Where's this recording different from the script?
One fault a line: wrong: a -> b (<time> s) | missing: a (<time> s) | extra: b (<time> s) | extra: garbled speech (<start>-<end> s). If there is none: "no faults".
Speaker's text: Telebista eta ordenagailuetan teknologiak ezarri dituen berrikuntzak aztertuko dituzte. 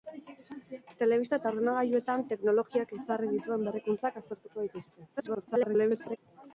extra: garbled speech (5.2-6.2 s)